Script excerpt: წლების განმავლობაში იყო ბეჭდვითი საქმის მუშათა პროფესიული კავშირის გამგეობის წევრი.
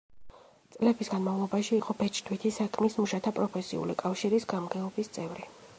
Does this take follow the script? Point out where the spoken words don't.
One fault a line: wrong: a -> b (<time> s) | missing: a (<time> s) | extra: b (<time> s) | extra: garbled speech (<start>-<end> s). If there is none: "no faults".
no faults